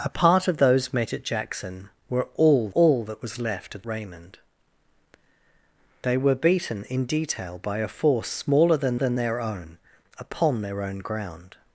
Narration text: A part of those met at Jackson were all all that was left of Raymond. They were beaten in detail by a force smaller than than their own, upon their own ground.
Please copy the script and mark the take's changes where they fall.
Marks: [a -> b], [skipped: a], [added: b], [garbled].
A part of those met at Jackson were all all that was left of Raymond. They were beaten in detail by a force smaller than than their own, upon their own ground.